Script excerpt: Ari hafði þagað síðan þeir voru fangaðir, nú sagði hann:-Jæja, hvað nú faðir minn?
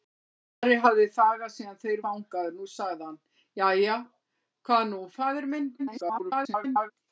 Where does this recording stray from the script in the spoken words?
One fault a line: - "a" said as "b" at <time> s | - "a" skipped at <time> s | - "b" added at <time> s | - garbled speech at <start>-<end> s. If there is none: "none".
- "voru" skipped at 2.0 s
- garbled speech at 5.8-6.9 s